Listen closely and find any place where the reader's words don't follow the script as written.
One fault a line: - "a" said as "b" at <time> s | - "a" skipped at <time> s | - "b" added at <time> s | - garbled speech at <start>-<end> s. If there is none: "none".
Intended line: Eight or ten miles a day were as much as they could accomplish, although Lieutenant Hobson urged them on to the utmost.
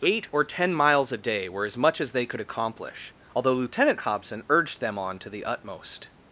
none